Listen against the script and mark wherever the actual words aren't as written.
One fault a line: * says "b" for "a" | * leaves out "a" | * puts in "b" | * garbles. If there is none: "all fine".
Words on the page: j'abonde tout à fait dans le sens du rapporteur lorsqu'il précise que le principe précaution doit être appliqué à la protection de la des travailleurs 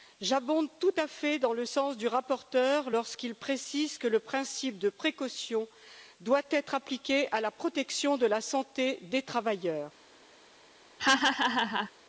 * puts in "de"
* puts in "santé"